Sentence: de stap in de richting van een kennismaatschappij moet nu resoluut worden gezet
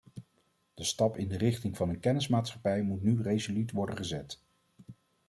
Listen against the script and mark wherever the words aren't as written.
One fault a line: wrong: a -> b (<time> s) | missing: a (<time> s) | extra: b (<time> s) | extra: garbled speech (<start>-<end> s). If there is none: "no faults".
no faults